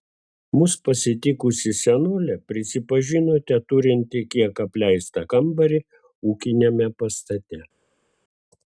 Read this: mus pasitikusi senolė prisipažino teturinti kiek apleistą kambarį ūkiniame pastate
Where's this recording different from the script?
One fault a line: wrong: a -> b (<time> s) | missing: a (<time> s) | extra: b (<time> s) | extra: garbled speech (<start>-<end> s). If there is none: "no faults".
no faults